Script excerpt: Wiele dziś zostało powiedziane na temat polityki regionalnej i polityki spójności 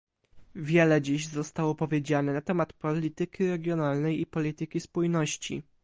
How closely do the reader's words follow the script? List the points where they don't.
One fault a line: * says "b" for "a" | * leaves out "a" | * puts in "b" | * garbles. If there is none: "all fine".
all fine